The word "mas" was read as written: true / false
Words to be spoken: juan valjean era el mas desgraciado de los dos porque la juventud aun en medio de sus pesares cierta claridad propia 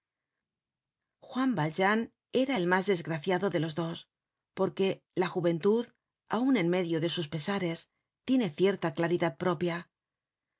true